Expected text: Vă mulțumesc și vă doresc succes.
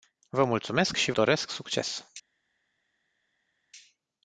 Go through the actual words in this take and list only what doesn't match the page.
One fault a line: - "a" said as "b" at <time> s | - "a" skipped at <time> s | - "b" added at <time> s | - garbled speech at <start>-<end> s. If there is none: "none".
- "vă" skipped at 1.1 s